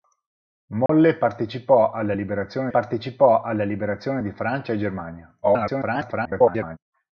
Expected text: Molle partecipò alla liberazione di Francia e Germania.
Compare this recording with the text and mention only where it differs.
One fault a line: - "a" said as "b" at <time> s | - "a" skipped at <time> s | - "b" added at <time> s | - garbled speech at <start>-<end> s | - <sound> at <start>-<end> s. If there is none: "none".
- dropout at 0.9-0.9 s
- "partecipò alla liberazione" added at 2.7 s
- garbled speech at 5.4-6.8 s